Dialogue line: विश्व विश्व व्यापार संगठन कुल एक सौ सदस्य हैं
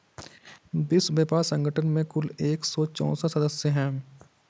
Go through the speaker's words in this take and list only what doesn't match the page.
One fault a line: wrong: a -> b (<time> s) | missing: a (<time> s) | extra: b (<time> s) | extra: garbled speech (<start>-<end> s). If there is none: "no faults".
missing: विश्व (1.1 s)
extra: में (1.9 s)
extra: चौसठ (2.9 s)